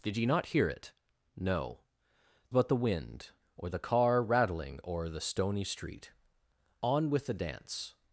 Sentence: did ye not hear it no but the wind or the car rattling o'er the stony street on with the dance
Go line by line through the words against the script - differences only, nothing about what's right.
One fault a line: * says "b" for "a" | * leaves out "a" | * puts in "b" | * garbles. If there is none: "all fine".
all fine